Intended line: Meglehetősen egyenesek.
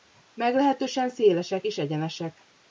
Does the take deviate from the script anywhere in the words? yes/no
yes